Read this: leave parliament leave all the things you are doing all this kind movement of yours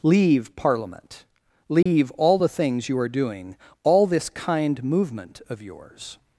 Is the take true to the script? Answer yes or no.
yes